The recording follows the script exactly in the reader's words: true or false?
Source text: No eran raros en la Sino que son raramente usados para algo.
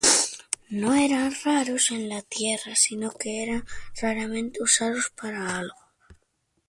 false